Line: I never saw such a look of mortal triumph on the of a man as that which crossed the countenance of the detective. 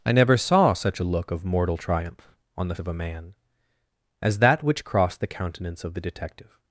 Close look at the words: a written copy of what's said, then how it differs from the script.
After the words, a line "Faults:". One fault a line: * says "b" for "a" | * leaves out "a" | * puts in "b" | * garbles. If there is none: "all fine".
I never saw such a look of mortal triumph on the of a man as that which crossed the countenance of the detective.
Faults:
all fine